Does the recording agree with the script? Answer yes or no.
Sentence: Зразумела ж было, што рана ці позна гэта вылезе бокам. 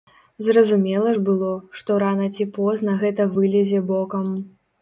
yes